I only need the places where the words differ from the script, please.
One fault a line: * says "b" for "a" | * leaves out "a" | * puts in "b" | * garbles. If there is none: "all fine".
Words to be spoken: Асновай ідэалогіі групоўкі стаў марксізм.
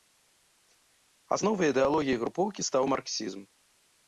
all fine